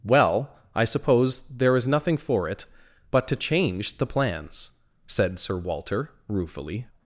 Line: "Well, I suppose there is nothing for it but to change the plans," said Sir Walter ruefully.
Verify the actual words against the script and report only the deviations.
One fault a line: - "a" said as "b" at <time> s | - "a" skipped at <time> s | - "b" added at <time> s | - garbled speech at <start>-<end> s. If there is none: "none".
none